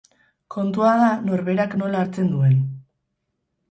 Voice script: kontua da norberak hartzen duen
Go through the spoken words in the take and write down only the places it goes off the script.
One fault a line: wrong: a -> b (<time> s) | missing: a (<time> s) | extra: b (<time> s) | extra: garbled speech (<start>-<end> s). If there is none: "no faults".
extra: nola (1.8 s)